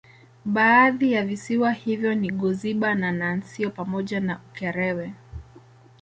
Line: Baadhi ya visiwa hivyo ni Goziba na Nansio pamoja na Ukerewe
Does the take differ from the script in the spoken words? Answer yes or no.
no